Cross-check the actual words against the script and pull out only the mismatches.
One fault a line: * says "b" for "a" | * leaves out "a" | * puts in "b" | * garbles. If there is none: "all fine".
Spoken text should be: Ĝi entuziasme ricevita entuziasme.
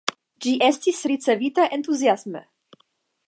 * says "estis" for "entuziasme"